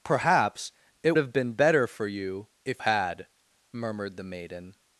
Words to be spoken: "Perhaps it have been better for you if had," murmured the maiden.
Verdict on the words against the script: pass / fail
pass